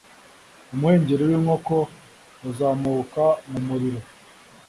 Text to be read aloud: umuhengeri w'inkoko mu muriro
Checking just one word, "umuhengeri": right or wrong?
right